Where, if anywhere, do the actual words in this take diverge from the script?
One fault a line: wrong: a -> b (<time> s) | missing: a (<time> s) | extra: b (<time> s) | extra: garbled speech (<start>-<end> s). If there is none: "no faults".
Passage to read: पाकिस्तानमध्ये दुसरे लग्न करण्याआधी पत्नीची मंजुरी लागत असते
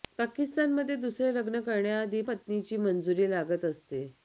no faults